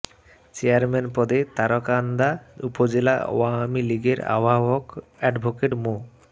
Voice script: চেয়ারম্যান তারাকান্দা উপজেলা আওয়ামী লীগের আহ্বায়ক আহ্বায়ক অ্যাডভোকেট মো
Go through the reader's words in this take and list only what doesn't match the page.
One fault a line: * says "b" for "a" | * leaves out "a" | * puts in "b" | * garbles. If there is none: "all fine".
* puts in "পদে"
* leaves out "আহ্বায়ক"